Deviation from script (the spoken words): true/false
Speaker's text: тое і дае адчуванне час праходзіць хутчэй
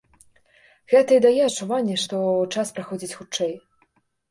true